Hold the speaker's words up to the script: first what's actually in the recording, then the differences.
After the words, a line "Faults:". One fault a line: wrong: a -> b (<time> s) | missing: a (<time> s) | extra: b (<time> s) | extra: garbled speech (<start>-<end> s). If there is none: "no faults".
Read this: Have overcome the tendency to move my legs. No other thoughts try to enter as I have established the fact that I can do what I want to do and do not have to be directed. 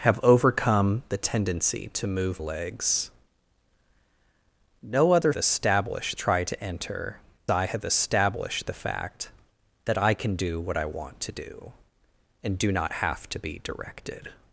Have overcome the tendency to move legs. No other established try to enter I have established the fact that I can do what I want to do and do not have to be directed.
Faults:
missing: my (2.4 s)
wrong: thoughts -> established (5.4 s)
missing: as (7.2 s)